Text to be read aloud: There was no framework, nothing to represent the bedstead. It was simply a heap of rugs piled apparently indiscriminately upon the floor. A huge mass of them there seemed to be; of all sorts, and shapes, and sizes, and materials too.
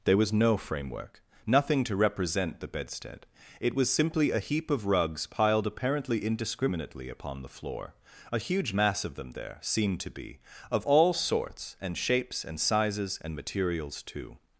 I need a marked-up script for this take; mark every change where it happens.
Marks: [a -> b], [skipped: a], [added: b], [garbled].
There was no framework, nothing to represent the bedstead. It was simply a heap of rugs piled apparently indiscriminately upon the floor. A huge mass of them there seemed to be; of all sorts, and shapes, and sizes, and materials too.